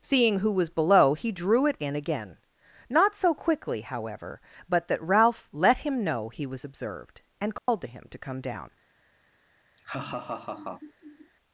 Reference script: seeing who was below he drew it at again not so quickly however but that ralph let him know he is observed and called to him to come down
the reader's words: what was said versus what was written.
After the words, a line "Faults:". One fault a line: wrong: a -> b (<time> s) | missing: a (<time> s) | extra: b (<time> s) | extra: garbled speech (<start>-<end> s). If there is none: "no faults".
seeing who was below he drew it in again not so quickly however but that ralph let him know he was observed and called to him to come down
Faults:
wrong: at -> in (1.8 s)
wrong: is -> was (6.5 s)